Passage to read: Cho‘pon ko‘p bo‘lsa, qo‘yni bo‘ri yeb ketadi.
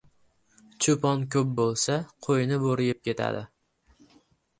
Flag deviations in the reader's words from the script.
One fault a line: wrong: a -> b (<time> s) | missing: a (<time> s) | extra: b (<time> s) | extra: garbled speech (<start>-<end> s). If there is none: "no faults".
no faults